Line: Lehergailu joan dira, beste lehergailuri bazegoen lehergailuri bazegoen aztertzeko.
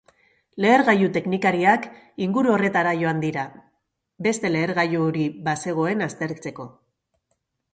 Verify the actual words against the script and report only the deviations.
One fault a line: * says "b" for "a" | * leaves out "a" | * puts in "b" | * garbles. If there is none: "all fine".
* puts in "teknikariak inguru horretara"
* leaves out "lehergailuri bazegoen"